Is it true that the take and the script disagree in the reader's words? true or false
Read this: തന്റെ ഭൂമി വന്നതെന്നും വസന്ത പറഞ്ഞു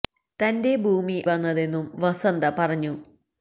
false